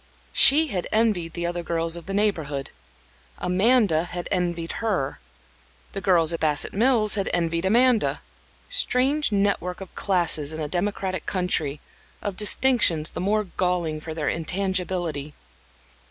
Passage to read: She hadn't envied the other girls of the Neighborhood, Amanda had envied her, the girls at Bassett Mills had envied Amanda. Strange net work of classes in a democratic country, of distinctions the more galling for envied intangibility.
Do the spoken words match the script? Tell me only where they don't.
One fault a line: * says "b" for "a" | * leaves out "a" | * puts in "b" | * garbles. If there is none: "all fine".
* says "had" for "hadn't"
* says "their" for "envied"